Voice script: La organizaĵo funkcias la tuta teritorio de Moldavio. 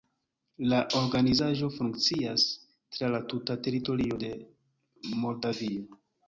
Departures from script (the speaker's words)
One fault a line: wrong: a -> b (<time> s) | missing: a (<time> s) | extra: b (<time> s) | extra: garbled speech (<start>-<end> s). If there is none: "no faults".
extra: tra (3.0 s)